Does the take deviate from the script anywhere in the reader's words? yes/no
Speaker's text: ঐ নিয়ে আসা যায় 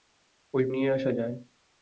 no